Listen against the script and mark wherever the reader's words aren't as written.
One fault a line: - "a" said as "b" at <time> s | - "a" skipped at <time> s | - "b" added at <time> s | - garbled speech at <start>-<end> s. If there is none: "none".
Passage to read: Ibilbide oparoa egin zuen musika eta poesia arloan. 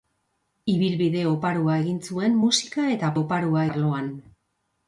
- "poesia" said as "oparoa" at 3.2 s